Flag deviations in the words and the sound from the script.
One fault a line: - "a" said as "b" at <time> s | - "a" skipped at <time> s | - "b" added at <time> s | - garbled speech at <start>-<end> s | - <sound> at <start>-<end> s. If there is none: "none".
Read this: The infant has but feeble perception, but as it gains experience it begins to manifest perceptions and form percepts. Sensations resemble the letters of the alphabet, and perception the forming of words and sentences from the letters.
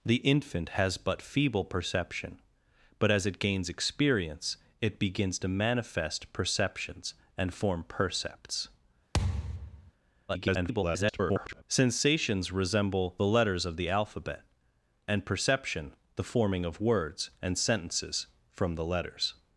- thud at 9.1-9.9 s
- garbled speech at 10.3-11.6 s